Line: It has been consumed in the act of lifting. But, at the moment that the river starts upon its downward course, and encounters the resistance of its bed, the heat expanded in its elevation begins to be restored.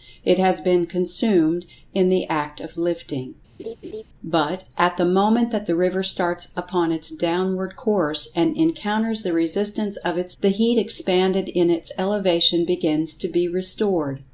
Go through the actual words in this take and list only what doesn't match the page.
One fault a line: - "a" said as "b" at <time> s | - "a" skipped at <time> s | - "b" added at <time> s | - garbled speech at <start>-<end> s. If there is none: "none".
- "bed" skipped at 10.3 s